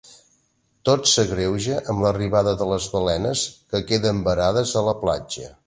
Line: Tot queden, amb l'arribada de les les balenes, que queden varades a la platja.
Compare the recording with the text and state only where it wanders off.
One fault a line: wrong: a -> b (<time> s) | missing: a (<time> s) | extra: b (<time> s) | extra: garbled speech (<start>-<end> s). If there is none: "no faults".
wrong: queden -> s'agreuja (1.1 s)
missing: les (2.9 s)